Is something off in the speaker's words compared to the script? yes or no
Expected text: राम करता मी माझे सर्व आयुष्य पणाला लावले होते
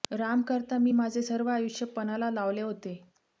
no